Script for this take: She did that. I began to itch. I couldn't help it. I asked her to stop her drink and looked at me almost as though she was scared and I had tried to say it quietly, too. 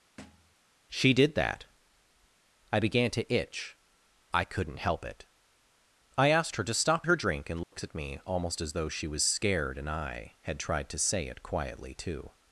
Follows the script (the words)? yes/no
yes